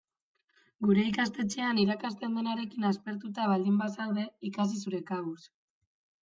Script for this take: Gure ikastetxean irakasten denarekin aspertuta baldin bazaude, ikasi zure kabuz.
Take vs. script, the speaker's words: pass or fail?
pass